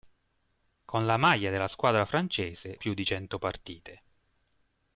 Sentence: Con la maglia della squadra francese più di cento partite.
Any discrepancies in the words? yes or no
no